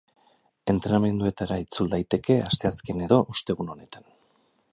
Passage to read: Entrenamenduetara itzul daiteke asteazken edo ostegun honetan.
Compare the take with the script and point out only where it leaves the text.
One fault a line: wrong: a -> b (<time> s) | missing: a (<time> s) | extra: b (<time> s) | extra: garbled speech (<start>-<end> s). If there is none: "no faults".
no faults